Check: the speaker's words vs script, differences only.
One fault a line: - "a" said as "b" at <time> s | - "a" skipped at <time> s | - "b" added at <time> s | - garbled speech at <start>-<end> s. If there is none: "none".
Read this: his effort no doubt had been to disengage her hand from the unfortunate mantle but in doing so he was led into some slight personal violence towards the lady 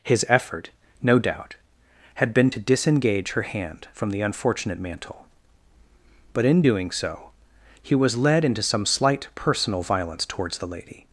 none